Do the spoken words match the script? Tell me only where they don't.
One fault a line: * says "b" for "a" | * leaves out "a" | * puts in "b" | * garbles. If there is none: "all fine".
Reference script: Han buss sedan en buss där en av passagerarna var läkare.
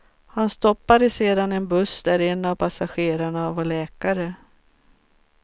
* says "stoppade" for "buss"